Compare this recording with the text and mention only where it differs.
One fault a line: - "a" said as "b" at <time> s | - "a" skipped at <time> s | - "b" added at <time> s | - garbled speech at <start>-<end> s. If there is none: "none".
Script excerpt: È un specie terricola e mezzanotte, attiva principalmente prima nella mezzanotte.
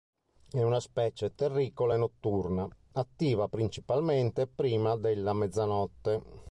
- "un" said as "una" at 0.6 s
- "mezzanotte" said as "notturna" at 2.0 s
- "nella" said as "della" at 4.9 s